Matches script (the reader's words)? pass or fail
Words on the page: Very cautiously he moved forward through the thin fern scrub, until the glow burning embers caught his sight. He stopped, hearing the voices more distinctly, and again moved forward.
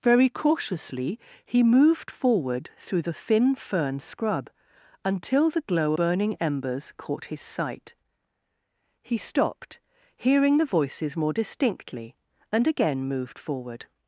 pass